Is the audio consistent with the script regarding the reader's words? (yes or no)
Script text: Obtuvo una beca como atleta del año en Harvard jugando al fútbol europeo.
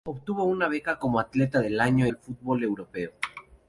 no